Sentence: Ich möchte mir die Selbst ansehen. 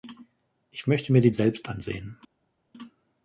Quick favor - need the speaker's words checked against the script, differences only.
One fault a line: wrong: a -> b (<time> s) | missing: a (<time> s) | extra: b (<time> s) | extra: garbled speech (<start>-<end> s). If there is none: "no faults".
no faults